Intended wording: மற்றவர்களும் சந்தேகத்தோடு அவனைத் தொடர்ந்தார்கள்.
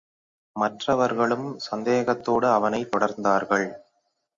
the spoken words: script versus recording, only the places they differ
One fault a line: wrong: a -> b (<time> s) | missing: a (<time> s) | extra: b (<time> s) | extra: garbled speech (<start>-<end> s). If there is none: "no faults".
no faults